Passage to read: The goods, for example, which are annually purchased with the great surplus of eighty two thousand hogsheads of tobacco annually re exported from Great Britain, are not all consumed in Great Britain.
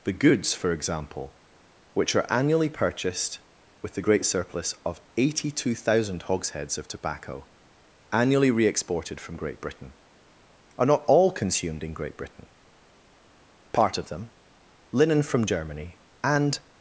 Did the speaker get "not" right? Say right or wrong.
right